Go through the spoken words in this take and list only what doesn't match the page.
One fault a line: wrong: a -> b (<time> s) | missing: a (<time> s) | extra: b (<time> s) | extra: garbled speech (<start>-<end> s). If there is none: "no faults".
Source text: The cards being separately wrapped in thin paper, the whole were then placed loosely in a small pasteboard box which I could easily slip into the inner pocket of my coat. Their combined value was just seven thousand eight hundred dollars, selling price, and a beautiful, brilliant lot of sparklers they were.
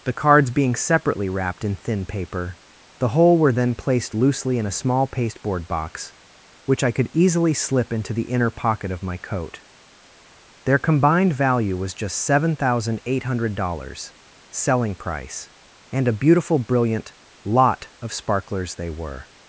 no faults